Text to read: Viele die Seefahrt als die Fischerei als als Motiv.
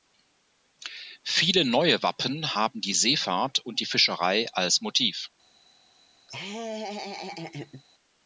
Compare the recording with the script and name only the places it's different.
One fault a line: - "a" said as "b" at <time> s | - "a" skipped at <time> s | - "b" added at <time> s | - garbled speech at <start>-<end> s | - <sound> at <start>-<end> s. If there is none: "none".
- "neue Wappen haben" added at 1.6 s
- "als" said as "und" at 3.6 s
- "als" skipped at 4.8 s
- laugh at 6.3-7.8 s